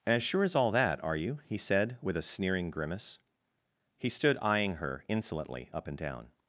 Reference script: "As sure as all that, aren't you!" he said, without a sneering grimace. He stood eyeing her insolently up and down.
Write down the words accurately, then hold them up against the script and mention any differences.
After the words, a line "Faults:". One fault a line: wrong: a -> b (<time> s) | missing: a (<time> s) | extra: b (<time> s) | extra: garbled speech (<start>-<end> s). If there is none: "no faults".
"As sure as all that, are you!" he said, with a sneering grimace. He stood eyeing her insolently up and down.
Faults:
wrong: aren't -> are (1.0 s)
wrong: without -> with (2.0 s)